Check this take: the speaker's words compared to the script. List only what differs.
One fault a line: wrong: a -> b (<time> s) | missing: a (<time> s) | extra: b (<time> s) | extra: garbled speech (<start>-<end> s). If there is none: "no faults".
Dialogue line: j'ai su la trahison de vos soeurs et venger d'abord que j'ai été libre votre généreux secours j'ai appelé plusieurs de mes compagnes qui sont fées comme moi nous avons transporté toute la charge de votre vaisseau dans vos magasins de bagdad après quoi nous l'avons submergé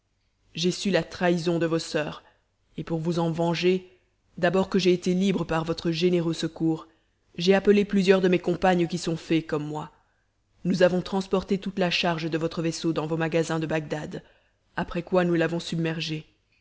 extra: pour vous en (2.8 s)
extra: par (5.4 s)